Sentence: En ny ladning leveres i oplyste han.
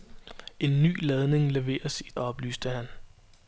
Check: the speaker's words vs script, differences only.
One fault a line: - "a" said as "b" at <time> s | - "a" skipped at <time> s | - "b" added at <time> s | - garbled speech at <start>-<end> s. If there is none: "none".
none